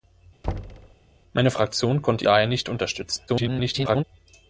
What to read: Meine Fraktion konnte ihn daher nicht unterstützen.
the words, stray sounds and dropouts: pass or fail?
fail